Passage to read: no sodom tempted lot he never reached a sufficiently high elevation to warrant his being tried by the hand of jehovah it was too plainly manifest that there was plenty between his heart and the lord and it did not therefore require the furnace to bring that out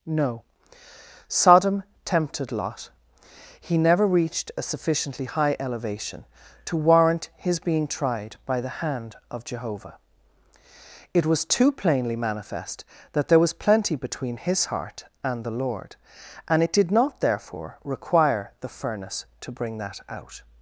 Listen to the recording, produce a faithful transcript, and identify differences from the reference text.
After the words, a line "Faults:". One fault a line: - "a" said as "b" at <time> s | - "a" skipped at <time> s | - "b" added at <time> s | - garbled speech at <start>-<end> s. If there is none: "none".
no sodom tempted lot he never reached a sufficiently high elevation to warrant his being tried by the hand of jehovah it was too plainly manifest that there was plenty between his heart and the lord and it did not therefore require the furnace to bring that out
Faults:
none